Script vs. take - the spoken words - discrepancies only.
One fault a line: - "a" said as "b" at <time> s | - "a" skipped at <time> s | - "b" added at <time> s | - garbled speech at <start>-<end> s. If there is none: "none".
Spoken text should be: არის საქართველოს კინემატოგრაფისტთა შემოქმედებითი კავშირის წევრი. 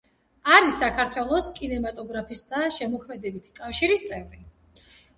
none